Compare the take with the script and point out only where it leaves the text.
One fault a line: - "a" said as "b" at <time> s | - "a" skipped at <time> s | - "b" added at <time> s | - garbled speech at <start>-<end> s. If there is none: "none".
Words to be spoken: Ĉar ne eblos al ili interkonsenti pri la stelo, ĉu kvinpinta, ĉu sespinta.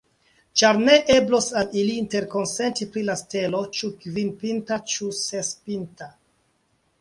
none